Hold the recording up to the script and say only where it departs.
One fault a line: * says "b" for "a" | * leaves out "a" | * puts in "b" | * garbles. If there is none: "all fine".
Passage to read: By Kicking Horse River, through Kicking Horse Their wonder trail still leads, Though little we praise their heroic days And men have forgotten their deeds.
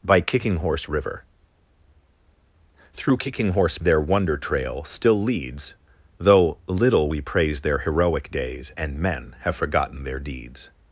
all fine